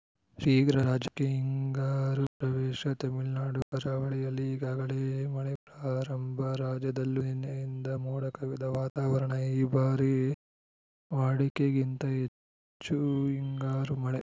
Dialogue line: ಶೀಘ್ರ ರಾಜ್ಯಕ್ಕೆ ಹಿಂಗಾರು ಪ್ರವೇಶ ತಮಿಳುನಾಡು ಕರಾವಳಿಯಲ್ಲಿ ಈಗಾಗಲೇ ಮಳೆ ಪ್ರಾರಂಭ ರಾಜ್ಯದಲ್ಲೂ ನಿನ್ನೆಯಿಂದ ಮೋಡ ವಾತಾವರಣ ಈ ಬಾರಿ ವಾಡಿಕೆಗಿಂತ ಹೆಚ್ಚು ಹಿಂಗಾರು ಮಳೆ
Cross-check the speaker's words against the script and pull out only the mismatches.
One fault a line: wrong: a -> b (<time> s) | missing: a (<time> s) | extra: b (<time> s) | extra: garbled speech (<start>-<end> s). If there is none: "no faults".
extra: ಕವಿದ (8.3 s)